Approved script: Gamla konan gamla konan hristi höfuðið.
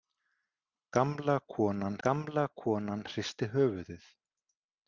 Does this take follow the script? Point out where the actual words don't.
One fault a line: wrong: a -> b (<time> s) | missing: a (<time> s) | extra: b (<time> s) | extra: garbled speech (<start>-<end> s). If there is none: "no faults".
no faults